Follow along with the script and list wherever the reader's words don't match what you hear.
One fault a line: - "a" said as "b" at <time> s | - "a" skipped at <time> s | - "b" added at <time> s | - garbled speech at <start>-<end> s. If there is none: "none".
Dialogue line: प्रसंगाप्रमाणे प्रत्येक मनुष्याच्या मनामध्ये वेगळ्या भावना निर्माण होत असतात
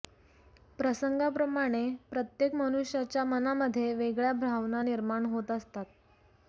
none